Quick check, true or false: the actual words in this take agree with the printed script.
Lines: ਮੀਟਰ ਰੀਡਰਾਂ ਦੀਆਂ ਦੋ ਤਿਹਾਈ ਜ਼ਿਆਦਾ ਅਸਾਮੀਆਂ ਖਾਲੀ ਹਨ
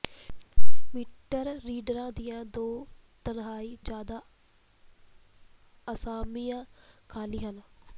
true